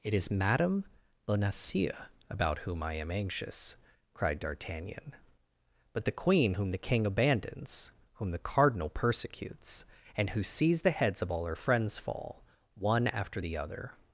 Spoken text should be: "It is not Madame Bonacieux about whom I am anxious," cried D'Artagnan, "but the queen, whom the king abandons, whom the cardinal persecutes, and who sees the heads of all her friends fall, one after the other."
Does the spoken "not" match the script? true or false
false